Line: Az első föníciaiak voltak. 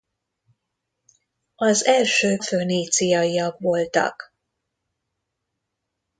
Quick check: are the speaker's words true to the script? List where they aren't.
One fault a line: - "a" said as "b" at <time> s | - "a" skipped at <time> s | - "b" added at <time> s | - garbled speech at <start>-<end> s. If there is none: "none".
none